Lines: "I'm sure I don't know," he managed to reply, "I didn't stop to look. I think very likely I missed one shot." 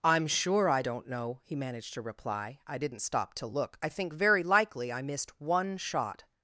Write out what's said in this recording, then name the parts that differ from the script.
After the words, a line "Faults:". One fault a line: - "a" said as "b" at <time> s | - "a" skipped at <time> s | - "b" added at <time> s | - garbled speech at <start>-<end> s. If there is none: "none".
"I'm sure I don't know," he managed to reply, "I didn't stop to look. I think very likely I missed one shot."
Faults:
none